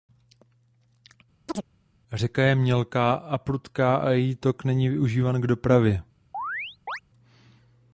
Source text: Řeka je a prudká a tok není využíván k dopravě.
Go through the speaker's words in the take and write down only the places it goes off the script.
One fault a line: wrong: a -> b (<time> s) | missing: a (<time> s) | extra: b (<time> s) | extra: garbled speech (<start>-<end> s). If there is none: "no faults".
extra: mělká (2.5 s)
extra: její (4.1 s)